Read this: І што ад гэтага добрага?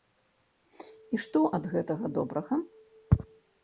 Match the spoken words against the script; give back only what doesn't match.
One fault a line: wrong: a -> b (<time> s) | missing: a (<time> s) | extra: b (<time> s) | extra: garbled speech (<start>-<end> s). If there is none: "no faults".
no faults